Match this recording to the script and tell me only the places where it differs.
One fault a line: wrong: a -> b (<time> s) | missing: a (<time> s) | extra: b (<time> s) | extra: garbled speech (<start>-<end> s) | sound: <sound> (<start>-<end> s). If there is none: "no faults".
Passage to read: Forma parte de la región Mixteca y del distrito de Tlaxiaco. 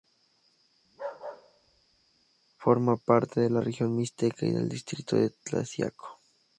sound: bark (0.8-2.3 s)